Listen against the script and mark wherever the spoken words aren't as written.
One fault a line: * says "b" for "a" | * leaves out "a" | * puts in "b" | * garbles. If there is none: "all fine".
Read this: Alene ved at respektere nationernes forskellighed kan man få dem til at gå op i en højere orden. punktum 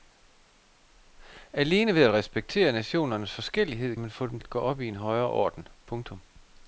* leaves out "kan"
* leaves out "til"